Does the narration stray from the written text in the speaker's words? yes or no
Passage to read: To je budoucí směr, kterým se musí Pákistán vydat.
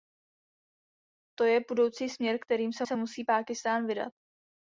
yes